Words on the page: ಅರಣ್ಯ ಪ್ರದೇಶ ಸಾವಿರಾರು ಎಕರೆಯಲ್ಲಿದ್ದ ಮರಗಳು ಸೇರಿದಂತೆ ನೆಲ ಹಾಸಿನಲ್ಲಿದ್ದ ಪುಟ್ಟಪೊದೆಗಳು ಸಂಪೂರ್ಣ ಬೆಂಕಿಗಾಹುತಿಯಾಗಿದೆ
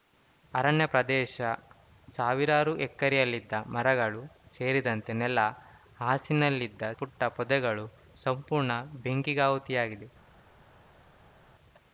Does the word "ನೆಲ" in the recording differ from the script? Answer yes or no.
no